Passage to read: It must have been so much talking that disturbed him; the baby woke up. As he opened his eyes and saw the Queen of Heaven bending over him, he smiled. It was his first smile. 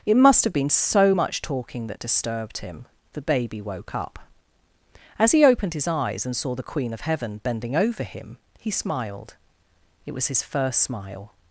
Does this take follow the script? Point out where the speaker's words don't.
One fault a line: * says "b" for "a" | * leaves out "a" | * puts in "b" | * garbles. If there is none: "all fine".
all fine